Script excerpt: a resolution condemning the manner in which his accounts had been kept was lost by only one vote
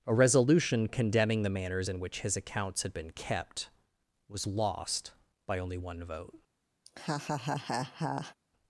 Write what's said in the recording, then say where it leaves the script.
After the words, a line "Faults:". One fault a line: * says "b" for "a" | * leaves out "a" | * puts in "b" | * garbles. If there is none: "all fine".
a resolution condemning the manners in which his accounts had been kept was lost by only one vote
Faults:
* says "manners" for "manner"